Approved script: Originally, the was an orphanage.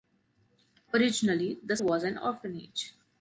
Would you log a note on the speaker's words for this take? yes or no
no